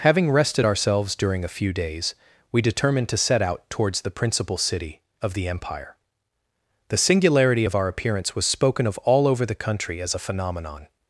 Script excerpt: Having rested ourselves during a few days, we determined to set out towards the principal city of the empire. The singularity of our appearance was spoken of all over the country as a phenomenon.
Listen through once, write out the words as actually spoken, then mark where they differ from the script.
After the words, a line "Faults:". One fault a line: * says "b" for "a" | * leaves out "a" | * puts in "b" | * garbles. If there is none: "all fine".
Having rested ourselves during a few days, we determined to set out towards the principal city of the empire. The singularity of our appearance was spoken of all over the country as a phenomenon.
Faults:
all fine